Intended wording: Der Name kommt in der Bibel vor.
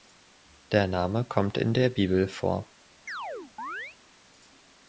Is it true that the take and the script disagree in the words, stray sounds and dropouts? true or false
true